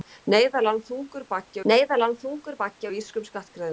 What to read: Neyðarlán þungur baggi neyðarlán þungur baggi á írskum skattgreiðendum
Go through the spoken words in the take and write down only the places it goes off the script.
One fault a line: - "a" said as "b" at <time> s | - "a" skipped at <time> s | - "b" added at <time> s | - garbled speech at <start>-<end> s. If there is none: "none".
none